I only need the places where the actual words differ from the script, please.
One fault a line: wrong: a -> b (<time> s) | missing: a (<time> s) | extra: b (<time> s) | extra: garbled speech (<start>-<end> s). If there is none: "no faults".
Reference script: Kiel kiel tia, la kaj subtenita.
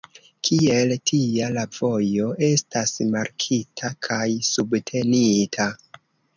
missing: kiel (0.9 s)
extra: vojo estas markita (1.8 s)